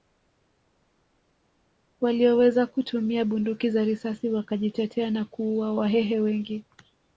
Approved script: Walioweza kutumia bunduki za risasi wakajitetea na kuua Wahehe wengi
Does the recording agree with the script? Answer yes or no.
yes